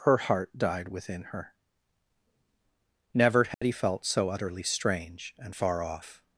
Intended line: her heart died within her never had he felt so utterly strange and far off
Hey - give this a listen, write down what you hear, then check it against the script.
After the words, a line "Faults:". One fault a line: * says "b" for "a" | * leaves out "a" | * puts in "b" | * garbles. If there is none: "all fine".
her heart died within her never had he felt so utterly strange and far off
Faults:
all fine